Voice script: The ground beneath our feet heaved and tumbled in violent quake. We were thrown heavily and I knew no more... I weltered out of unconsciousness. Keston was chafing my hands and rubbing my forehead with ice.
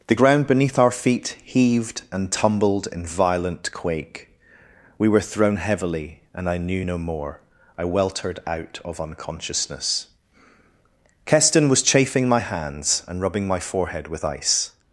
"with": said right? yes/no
yes